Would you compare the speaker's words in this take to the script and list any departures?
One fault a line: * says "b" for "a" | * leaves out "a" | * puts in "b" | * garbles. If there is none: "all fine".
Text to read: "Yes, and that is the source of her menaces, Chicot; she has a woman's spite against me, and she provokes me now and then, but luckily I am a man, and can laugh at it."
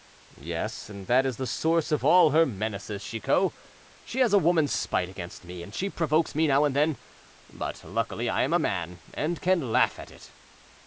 * puts in "all"